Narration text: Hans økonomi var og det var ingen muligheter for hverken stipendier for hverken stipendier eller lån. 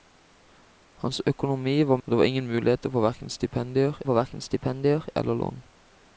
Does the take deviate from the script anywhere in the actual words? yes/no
no